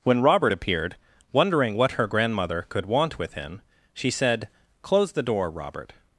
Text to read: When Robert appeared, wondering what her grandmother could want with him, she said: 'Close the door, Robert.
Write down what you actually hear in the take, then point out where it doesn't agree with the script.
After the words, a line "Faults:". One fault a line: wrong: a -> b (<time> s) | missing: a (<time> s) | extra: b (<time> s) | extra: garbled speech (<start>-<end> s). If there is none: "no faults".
When Robert appeared, wondering what her grandmother could want with him, she said: 'Close the door, Robert.
Faults:
no faults